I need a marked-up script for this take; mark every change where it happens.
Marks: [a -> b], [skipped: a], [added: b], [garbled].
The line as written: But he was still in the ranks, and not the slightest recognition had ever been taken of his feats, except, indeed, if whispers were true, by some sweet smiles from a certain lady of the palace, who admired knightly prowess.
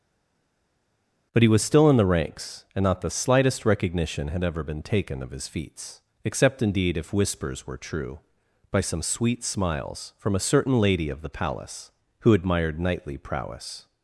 But he was still in the ranks, and not the slightest recognition had ever been taken of his feats, except, indeed, if whispers were true, by some sweet smiles from a certain lady of the palace, who admired knightly prowess.